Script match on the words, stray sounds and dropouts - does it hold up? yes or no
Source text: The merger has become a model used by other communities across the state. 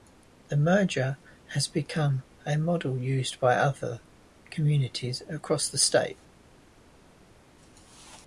yes